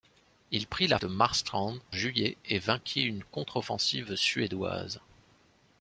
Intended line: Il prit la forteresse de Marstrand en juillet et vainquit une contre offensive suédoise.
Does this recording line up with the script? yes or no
no